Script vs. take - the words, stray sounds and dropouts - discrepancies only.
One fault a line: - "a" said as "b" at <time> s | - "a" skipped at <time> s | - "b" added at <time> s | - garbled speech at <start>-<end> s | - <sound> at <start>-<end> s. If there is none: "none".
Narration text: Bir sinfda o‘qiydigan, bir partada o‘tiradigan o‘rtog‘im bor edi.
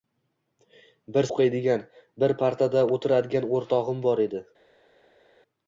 - "sinfda" skipped at 1.3 s